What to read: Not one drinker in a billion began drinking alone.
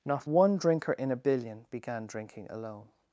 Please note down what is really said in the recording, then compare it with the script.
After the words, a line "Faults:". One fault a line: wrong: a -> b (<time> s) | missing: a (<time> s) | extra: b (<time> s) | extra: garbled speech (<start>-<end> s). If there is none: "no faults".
Not one drinker in a billion began drinking alone.
Faults:
no faults